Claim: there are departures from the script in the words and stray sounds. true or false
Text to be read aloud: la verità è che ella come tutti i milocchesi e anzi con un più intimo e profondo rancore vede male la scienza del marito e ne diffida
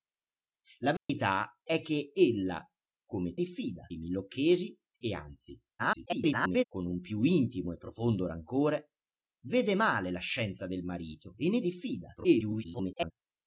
true